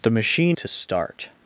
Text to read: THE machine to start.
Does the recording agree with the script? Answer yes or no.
yes